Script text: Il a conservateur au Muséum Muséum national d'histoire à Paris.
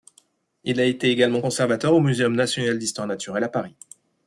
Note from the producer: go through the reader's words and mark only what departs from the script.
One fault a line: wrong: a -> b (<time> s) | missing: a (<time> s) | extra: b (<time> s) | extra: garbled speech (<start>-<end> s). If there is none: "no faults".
extra: été également (0.8 s)
missing: Muséum (2.3 s)
extra: naturelle (3.0 s)